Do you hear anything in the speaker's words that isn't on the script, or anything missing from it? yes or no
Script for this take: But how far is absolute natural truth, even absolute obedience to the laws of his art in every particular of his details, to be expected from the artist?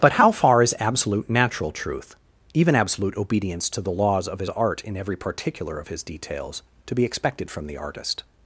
no